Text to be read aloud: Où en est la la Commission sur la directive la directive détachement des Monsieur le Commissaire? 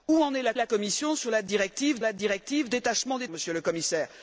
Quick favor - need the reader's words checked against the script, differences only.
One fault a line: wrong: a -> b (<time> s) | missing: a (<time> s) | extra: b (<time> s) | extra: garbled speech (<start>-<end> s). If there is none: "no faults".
no faults